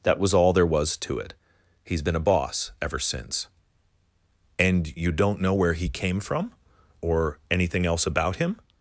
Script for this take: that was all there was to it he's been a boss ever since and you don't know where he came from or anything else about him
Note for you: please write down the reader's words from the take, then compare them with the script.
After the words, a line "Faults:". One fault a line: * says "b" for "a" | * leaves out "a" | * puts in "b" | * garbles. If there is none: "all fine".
that was all there was to it he's been a boss ever since and you don't know where he came from or anything else about him
Faults:
all fine